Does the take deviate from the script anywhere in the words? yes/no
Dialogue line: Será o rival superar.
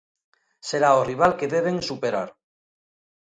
yes